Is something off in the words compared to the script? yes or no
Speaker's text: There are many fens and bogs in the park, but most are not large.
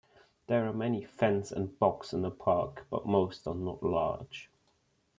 no